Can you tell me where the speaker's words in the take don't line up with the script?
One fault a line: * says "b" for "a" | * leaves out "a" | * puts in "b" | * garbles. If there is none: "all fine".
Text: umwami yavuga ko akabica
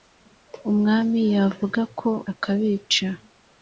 all fine